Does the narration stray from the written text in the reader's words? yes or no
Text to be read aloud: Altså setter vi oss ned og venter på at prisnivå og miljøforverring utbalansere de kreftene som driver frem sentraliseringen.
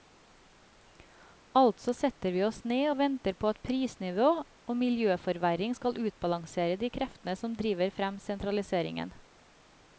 yes